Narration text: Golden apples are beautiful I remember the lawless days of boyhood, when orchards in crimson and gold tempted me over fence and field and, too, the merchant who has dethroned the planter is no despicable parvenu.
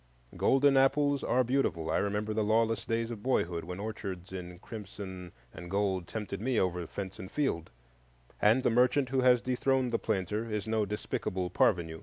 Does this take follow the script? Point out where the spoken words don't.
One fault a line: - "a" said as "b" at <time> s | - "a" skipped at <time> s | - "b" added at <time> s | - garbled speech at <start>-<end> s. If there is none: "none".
- "too" skipped at 8.7 s